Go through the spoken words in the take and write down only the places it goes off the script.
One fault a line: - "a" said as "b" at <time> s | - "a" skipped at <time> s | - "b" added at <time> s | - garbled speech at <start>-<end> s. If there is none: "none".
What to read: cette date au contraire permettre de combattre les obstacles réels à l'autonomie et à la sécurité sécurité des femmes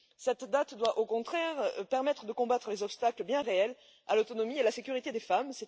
- "doit" added at 0.8 s
- "bien" added at 3.2 s
- "sécurité" skipped at 5.1 s